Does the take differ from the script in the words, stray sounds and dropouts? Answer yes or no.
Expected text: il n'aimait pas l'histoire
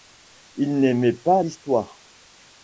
no